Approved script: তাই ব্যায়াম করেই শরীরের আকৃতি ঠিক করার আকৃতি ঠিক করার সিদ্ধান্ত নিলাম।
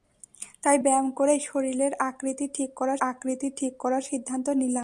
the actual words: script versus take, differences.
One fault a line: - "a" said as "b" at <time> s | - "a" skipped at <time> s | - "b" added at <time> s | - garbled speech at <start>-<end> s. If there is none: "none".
none